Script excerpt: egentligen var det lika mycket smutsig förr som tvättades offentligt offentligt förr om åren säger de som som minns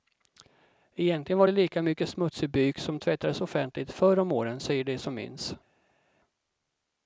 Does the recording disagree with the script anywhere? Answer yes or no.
yes